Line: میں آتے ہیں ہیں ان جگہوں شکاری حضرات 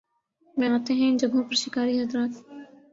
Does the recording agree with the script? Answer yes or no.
no